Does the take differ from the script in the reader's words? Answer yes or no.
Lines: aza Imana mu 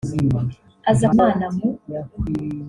no